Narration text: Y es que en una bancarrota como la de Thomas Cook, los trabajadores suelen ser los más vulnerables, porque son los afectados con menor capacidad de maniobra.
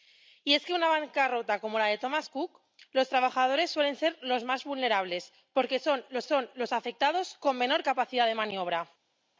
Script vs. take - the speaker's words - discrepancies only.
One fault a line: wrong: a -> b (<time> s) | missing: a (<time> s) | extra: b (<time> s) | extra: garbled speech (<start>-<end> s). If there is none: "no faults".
extra: son los (6.2 s)